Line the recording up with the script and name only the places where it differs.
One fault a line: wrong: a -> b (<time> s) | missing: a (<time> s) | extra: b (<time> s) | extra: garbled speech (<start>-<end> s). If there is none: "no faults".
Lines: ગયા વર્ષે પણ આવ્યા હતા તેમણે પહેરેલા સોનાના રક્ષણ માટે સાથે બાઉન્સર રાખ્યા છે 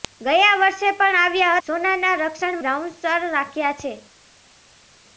missing: હતા તેમણે પહેરેલા (1.6 s)
missing: માટે સાથે (2.6 s)